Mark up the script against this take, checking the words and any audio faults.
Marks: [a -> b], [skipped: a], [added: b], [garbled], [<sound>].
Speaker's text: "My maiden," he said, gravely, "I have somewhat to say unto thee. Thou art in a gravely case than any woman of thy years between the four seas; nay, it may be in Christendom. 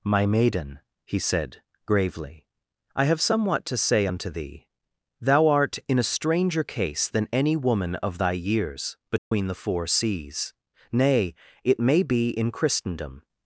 "My maiden," he said, gravely, "I have somewhat to say unto thee. Thou art in a [gravely -> stranger] case than any woman of thy years between [dropout] the four seas; nay, it may be in Christendom.